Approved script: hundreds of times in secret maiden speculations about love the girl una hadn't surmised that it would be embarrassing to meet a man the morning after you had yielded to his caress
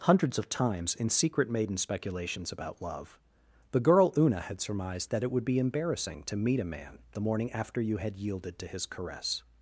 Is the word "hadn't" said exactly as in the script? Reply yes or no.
no